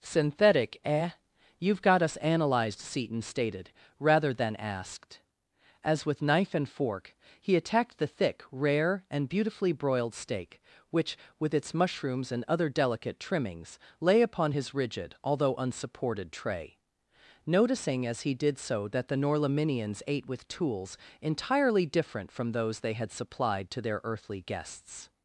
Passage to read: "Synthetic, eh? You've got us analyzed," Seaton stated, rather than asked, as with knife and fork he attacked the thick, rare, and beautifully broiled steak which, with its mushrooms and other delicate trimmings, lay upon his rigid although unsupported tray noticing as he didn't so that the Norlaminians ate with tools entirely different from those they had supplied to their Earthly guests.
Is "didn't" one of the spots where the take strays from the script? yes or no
yes